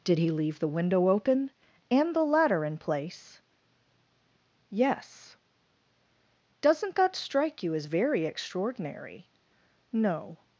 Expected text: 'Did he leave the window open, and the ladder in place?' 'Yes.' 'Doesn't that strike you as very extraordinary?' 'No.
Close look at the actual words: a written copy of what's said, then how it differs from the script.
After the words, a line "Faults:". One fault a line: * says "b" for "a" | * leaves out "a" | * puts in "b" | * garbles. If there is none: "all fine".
'Did he leave the window open, and the ladder in place?' 'Yes.' 'Doesn't that strike you as very extraordinary?' 'No.
Faults:
all fine